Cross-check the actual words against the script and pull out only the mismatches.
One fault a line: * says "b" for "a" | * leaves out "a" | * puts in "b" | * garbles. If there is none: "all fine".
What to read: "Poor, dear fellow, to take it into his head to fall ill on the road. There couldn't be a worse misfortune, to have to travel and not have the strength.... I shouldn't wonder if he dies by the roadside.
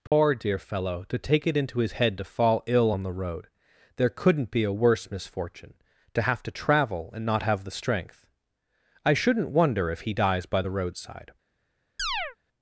all fine